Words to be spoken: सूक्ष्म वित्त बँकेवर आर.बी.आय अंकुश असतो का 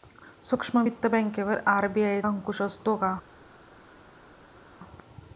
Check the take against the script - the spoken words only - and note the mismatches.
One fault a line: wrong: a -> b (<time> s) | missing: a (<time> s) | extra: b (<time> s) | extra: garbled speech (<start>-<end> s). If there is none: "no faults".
no faults